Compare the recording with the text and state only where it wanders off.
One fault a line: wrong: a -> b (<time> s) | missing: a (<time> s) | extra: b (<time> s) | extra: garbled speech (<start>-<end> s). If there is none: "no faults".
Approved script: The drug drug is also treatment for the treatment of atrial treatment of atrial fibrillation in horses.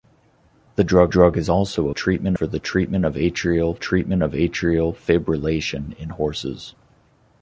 no faults